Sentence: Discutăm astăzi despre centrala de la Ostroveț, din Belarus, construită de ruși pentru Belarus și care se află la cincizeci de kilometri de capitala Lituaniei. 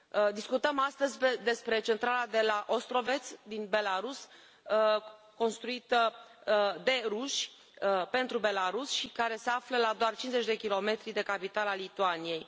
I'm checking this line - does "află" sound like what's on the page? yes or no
yes